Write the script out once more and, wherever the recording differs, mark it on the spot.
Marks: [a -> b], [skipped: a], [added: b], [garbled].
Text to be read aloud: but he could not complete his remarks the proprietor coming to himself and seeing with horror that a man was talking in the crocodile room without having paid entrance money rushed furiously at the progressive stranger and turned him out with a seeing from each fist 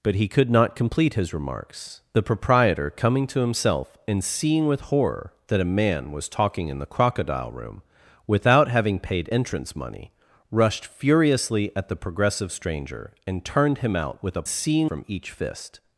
but he could not complete his remarks the proprietor coming to himself and seeing with horror that a man was talking in the crocodile room without having paid entrance money rushed furiously at the progressive stranger and turned him out with a seeing from each fist